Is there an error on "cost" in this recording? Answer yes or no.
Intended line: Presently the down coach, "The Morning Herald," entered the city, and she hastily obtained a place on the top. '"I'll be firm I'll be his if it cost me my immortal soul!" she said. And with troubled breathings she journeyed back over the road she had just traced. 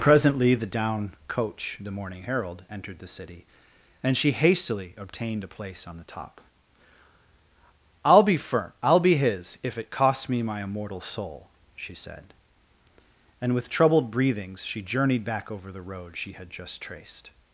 yes